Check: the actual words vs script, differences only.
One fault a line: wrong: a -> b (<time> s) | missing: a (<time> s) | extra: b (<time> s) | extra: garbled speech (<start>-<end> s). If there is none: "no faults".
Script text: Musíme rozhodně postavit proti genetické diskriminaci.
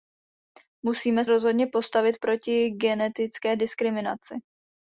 no faults